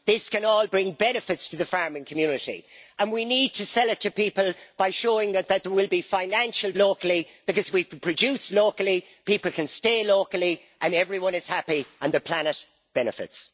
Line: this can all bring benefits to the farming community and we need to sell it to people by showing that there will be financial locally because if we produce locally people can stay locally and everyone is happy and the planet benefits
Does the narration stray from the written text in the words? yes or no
no